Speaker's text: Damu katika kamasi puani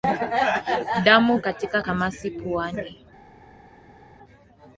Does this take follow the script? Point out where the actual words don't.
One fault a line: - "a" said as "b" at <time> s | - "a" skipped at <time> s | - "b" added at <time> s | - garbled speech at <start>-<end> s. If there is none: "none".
none